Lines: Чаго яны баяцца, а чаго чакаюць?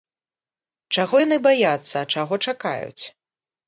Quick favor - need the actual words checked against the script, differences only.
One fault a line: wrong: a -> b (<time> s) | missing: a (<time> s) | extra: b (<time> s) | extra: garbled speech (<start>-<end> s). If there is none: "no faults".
no faults